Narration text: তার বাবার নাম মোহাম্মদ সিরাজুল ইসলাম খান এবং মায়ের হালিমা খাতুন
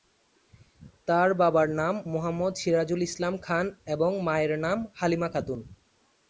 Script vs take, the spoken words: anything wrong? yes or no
yes